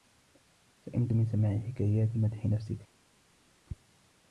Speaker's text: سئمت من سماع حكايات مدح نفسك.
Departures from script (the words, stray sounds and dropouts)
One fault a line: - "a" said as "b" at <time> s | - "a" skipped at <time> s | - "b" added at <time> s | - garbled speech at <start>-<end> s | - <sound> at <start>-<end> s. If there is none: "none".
none